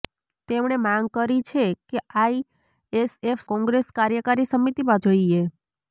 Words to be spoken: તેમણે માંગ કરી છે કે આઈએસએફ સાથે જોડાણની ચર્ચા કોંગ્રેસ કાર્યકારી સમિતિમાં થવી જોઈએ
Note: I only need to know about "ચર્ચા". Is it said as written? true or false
false